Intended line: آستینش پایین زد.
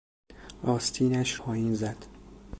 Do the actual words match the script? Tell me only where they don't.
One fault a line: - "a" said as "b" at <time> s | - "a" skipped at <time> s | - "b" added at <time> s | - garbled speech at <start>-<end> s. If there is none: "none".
none